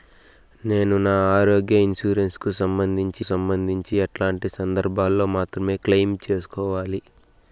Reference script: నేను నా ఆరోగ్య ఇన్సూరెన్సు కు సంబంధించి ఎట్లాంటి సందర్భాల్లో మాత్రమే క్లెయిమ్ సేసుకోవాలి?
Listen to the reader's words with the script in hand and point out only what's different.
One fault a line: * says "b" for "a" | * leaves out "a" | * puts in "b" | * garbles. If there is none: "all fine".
* puts in "సంబంధించి"